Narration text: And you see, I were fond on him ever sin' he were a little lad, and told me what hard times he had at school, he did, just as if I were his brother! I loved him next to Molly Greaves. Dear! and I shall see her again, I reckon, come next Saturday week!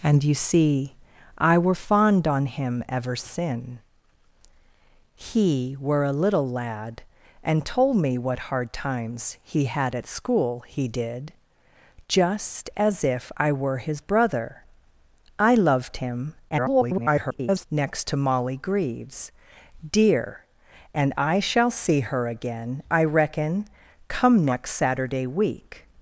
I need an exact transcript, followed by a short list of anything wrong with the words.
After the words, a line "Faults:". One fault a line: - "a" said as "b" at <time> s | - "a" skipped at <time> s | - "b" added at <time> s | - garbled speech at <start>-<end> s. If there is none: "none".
And you see, I were fond on him ever sin' he were a little lad, and told me what hard times he had at school, he did, just as if I were his brother! I loved him [garbled] next to Molly Greaves. Dear! and I shall see her again, I reckon, come next Saturday week!
Faults:
- garbled speech at 16.5-17.7 s